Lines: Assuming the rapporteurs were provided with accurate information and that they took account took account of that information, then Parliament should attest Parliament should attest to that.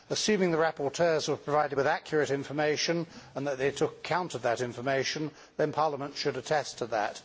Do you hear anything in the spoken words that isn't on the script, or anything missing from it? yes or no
yes